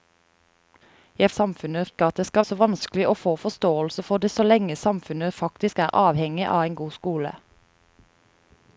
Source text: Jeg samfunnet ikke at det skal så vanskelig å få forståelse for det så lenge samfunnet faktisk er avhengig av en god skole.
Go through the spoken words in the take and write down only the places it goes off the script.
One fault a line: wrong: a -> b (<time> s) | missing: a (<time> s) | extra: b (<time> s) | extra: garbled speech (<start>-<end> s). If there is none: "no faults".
no faults